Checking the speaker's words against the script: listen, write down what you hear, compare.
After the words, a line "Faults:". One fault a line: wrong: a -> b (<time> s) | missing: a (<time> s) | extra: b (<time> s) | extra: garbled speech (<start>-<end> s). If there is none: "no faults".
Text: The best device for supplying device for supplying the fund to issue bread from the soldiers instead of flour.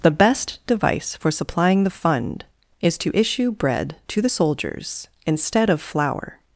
The best device for supplying the fund is to issue bread to the soldiers instead of flour.
Faults:
missing: device for supplying (1.8 s)
extra: is (2.8 s)
wrong: from -> to (4.1 s)